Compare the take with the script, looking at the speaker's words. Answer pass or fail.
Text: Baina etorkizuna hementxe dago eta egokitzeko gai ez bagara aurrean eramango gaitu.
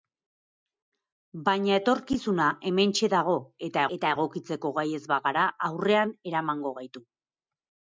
fail